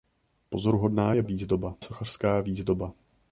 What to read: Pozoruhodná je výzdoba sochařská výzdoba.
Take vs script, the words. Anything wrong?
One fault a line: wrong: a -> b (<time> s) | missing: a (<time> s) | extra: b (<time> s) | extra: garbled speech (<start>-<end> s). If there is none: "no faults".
no faults